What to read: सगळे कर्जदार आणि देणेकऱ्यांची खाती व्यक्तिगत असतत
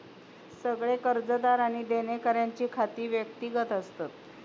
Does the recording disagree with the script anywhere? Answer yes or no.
no